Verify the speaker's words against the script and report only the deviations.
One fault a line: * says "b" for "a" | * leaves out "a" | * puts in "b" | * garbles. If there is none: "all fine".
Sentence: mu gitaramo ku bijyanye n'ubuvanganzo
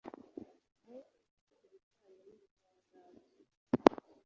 * leaves out "gitaramo"